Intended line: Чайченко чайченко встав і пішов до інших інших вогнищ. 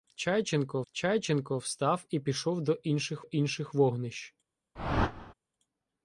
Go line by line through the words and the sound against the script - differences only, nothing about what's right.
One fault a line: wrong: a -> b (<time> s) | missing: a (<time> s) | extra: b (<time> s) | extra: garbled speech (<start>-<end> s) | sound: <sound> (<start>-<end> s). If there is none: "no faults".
sound: whoosh (4.8-5.3 s)